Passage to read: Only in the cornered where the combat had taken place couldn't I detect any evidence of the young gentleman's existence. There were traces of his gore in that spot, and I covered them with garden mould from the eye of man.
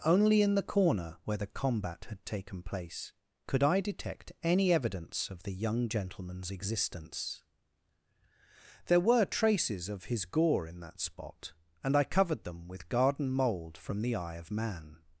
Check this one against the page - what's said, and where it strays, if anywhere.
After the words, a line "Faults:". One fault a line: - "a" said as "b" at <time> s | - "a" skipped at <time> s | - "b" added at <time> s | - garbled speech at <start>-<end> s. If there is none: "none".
Only in the corner where the combat had taken place could I detect any evidence of the young gentleman's existence. There were traces of his gore in that spot, and I covered them with garden mould from the eye of man.
Faults:
- "cornered" said as "corner" at 0.6 s
- "couldn't" said as "could" at 3.5 s